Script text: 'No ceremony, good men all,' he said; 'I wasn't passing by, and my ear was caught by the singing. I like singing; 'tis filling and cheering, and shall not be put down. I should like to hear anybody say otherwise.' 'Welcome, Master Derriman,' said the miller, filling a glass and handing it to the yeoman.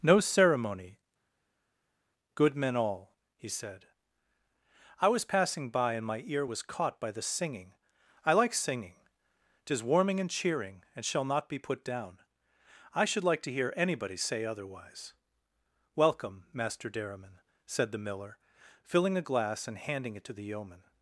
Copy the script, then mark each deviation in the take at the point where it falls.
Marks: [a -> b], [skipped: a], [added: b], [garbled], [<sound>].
'No ceremony, good men all,' he said; 'I [wasn't -> was] passing by, and my ear was caught by the singing. I like singing; 'tis [filling -> warming] and cheering, and shall not be put down. I should like to hear anybody say otherwise.' 'Welcome, Master Derriman,' said the miller, filling a glass and handing it to the yeoman.